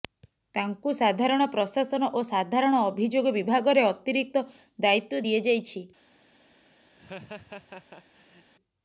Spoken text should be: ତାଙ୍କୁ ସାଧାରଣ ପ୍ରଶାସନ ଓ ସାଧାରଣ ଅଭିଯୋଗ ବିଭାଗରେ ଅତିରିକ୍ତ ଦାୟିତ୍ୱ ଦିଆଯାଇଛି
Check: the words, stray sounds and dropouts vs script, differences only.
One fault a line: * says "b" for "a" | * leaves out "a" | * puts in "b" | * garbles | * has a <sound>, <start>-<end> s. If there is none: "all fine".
* has a laugh, 7.0-8.5 s